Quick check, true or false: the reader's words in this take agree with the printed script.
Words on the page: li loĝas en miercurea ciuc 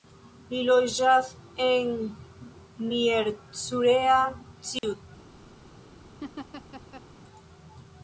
true